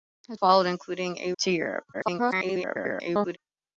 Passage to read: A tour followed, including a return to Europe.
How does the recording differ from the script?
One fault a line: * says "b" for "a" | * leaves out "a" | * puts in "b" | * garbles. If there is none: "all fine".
* leaves out "tour"
* leaves out "return"
* garbles